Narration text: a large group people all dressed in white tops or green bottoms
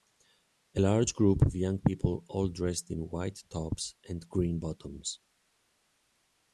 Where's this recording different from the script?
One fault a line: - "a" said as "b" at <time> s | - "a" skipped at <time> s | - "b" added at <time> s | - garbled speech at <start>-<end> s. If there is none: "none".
- "of young" added at 1.4 s
- "or" said as "and" at 4.1 s